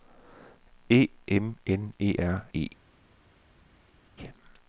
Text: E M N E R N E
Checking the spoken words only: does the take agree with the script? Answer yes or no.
no